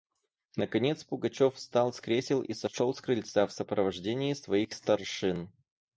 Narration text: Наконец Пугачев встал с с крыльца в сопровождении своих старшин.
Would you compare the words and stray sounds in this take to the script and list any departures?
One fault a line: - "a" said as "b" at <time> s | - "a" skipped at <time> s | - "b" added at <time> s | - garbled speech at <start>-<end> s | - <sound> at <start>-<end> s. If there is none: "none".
- "кресел и сошел" added at 2.0 s